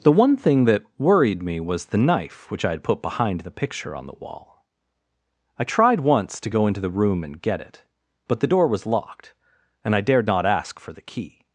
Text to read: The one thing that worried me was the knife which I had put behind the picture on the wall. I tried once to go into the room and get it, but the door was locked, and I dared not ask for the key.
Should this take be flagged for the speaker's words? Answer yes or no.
no